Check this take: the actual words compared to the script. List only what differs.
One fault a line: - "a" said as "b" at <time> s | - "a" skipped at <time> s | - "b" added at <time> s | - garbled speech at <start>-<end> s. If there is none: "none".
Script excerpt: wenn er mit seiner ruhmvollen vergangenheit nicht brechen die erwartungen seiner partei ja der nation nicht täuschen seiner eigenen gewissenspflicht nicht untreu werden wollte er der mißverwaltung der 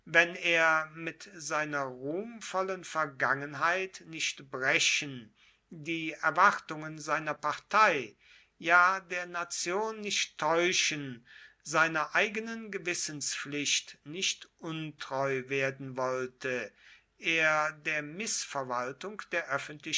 none